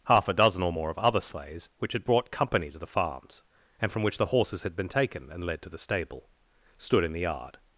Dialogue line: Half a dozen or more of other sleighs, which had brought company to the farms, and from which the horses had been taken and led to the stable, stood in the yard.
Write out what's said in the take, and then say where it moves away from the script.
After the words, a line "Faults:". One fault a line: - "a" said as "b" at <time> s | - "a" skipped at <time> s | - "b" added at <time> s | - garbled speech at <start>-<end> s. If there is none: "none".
Half a dozen or more of other sleighs, which had brought company to the farms, and from which the horses had been taken and led to the stable, stood in the yard.
Faults:
none